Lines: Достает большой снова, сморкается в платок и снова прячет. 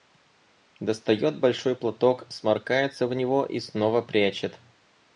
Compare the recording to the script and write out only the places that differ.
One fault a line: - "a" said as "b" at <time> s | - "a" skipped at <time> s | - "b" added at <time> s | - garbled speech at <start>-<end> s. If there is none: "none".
- "снова" said as "платок" at 1.7 s
- "платок" said as "него" at 3.2 s